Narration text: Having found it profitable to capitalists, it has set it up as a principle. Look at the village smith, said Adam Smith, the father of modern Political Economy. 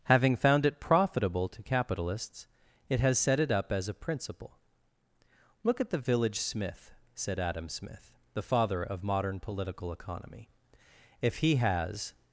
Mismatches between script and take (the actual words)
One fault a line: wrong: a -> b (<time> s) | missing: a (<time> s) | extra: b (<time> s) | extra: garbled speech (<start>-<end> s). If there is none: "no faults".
extra: If he has (11.2 s)